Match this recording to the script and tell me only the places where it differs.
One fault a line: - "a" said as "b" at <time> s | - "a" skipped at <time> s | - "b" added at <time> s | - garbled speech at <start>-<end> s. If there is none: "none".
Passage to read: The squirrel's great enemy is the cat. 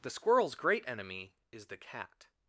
none